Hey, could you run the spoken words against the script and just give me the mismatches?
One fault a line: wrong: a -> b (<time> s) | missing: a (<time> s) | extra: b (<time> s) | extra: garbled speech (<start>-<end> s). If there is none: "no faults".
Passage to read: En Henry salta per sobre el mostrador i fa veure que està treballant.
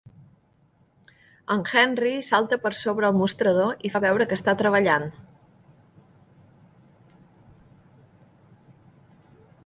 no faults